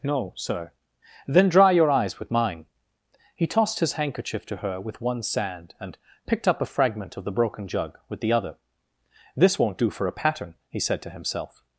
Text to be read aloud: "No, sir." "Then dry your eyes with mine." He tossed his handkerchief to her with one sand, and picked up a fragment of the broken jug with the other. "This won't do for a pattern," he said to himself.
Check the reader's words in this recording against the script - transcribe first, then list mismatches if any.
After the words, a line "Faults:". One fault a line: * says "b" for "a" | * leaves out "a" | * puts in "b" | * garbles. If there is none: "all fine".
"No, sir." "Then dry your eyes with mine." He tossed his handkerchief to her with one sand, and picked up a fragment of the broken jug with the other. "This won't do for a pattern," he said to himself.
Faults:
all fine